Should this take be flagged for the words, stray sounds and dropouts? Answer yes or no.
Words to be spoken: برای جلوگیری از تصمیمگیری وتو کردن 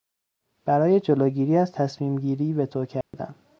yes